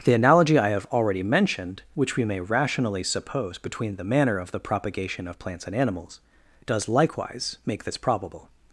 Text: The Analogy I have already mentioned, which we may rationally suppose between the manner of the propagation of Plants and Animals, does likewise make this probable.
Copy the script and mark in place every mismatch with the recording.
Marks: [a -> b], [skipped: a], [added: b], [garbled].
The Analogy I have already mentioned, which we may rationally suppose between the manner of the propagation of Plants and Animals, does likewise make this probable.